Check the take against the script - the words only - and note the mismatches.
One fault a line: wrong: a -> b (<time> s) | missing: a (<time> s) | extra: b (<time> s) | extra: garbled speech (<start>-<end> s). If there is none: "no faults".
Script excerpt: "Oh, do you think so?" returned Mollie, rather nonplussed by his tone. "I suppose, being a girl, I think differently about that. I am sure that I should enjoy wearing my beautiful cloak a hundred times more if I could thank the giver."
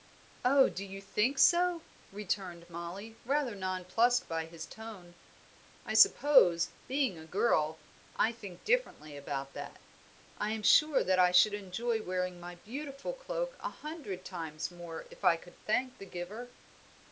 no faults